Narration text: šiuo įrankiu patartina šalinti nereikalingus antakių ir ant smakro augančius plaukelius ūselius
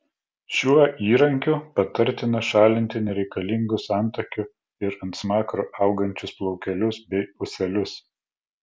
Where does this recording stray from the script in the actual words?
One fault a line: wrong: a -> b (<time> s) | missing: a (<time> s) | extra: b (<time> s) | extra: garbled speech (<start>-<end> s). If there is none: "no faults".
extra: bei (7.1 s)